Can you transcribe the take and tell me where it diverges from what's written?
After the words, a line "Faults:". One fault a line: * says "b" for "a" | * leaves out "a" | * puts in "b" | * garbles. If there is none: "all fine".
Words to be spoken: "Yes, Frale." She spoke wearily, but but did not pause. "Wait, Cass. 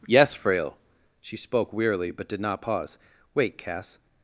"Yes, Frale." She spoke wearily, but did not pause. "Wait, Cass.
Faults:
* leaves out "but"